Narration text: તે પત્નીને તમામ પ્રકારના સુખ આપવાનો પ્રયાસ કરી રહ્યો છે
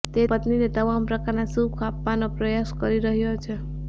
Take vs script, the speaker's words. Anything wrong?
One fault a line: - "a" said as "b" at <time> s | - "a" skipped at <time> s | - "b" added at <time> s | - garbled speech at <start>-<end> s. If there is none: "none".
none